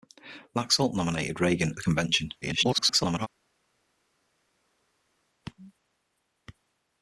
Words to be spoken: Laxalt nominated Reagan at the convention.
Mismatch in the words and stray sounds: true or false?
true